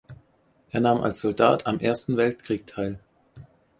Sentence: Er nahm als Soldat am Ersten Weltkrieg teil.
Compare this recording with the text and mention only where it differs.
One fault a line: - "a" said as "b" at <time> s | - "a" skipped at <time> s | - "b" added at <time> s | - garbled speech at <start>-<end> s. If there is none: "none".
none